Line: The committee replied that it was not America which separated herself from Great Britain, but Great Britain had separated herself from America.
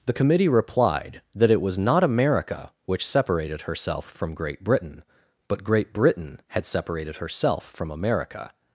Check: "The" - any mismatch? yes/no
no